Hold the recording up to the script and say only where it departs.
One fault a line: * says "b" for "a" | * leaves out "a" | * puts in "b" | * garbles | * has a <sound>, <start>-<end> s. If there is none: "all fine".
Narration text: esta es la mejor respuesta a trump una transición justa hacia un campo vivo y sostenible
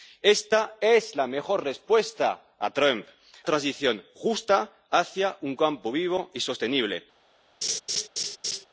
* leaves out "una"
* has a laugh, 7.6-8.7 s